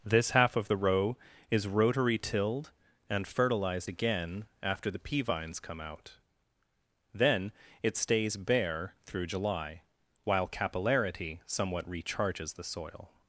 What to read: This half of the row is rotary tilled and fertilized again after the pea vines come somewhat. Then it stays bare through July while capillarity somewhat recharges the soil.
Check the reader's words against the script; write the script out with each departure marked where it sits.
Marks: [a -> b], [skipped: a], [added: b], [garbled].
This half of the row is rotary tilled and fertilized again after the pea vines come [somewhat. -> out] Then it stays bare through July while capillarity somewhat recharges the soil.